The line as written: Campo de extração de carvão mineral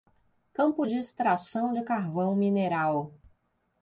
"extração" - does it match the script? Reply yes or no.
yes